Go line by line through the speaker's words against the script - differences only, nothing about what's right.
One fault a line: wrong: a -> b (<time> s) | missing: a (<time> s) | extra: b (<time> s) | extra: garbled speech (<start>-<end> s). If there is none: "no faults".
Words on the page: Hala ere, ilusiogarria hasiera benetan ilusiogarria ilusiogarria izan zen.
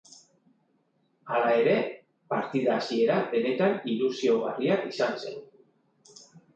wrong: ilusiogarria -> partida (2.4 s)
missing: ilusiogarria (4.8 s)